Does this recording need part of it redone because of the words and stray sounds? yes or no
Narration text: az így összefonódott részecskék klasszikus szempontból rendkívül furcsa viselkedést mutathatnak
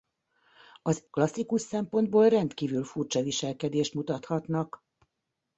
yes